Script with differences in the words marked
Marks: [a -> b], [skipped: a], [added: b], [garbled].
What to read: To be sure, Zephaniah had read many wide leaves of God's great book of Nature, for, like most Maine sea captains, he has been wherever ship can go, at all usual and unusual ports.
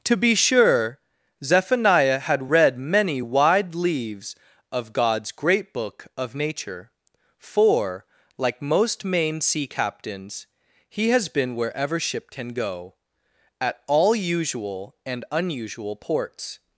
To be sure, Zephaniah had read many wide leaves of God's great book of Nature, for, like most Maine sea captains, he has been wherever ship can go, at all usual and unusual ports.